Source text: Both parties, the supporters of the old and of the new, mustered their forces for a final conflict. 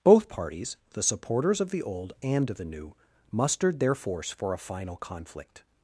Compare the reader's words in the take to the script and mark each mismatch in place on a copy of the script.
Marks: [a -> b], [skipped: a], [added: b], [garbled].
Both parties, the supporters of the old and of the new, mustered their [forces -> force] for a final conflict.